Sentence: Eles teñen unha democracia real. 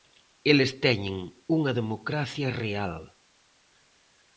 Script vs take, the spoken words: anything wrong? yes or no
no